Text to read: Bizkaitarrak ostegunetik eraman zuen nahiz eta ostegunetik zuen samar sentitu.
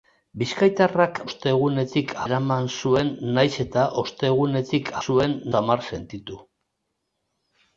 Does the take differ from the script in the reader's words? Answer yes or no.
no